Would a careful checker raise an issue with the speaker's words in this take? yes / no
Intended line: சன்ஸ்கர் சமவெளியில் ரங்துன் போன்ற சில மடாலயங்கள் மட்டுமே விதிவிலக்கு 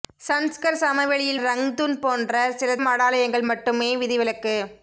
no